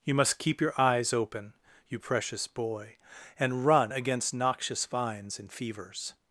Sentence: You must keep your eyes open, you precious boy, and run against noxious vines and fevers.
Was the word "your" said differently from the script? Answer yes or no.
no